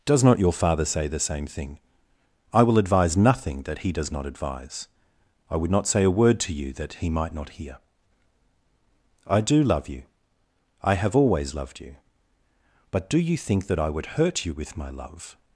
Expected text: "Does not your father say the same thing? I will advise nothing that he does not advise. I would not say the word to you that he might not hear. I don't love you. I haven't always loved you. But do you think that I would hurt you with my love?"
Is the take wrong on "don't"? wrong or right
wrong